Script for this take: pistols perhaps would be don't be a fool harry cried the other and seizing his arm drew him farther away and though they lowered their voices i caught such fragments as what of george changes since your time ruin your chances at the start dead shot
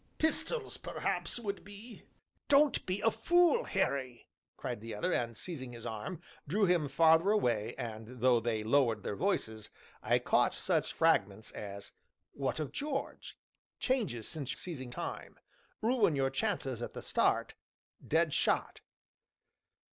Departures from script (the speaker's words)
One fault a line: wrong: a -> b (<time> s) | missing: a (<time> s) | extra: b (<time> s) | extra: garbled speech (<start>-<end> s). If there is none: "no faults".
wrong: your -> seizing (14.6 s)